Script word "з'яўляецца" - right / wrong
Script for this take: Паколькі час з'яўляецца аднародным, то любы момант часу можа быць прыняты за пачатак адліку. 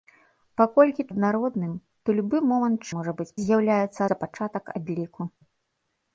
wrong